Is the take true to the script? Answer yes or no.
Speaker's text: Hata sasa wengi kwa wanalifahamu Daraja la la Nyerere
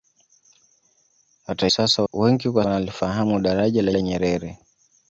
yes